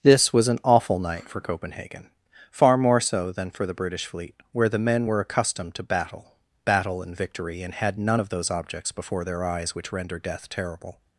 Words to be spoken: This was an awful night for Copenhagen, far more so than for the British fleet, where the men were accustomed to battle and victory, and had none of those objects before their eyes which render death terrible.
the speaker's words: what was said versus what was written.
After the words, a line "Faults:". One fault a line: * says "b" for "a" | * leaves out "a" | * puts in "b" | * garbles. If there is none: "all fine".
This was an awful night for Copenhagen, far more so than for the British fleet, where the men were accustomed to battle battle and victory, and had none of those objects before their eyes which render death terrible.
Faults:
* puts in "battle"